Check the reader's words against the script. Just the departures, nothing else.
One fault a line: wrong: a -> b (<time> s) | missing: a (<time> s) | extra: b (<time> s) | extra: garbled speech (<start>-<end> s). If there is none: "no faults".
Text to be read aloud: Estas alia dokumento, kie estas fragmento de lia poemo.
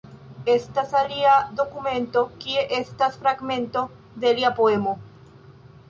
no faults